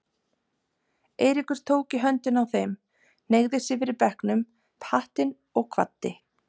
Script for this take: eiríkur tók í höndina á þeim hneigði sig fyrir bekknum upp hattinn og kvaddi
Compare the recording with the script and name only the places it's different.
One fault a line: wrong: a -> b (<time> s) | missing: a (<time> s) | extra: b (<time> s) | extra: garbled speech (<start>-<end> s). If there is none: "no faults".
no faults